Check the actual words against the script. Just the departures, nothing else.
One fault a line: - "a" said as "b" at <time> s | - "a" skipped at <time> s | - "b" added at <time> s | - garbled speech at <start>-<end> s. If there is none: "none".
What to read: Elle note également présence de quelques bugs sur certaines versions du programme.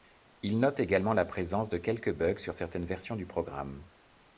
- "Elle" said as "Il" at 0.4 s
- "la" added at 1.1 s